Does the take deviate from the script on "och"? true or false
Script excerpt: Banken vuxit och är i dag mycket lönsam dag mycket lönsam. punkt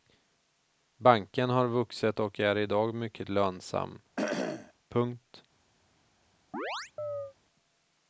false